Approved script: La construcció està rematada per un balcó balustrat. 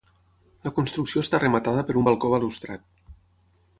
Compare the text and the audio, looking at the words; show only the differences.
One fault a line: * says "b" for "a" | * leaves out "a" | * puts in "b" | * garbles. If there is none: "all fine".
all fine